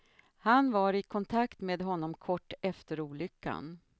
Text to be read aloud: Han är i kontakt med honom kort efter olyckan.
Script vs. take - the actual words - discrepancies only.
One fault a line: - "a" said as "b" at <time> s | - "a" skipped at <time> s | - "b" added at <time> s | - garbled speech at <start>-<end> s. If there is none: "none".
- "är" said as "var" at 0.7 s